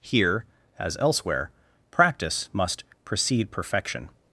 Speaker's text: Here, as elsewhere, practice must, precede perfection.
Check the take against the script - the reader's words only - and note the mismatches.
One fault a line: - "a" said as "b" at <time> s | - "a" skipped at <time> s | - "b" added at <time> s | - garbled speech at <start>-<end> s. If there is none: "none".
none